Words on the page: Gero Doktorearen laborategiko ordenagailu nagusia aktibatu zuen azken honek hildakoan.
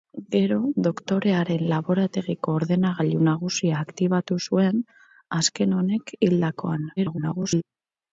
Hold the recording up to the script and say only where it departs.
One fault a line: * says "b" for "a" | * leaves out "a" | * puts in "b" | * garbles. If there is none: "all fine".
* garbles